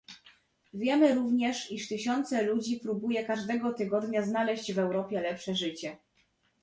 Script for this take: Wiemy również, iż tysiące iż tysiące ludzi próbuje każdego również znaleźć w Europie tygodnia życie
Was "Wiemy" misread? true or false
false